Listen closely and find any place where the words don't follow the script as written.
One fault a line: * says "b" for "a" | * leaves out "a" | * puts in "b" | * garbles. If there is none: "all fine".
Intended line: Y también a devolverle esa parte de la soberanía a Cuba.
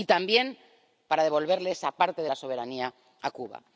* says "para" for "a"